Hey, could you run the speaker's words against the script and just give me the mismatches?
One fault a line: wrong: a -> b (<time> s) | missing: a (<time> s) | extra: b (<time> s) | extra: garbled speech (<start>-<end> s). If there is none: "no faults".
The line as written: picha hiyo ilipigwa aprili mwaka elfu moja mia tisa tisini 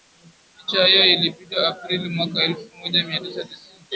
no faults